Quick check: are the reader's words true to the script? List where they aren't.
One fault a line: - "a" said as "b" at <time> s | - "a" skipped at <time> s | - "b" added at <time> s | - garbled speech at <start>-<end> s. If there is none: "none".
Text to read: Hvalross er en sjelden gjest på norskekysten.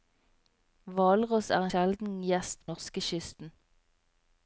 - "en" skipped at 1.7 s
- "på" skipped at 2.7 s